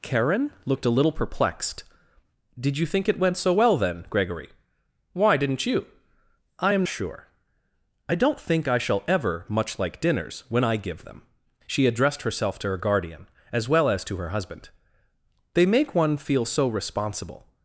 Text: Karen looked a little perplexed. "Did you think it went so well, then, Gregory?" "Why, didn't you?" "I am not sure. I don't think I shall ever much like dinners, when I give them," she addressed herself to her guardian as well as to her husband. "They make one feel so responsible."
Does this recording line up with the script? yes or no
no